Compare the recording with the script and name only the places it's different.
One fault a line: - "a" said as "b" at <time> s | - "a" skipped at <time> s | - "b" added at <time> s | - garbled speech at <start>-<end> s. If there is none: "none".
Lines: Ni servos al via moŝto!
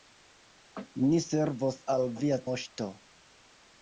none